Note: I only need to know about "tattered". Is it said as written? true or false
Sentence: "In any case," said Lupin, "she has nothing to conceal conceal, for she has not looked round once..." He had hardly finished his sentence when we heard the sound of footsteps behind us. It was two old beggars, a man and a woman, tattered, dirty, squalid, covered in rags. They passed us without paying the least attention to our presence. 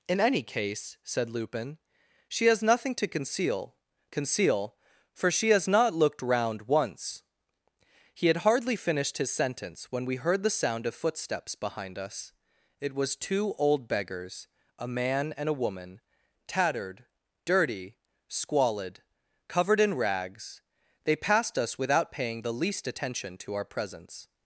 true